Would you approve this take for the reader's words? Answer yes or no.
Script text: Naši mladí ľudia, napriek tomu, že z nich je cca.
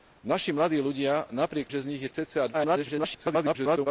no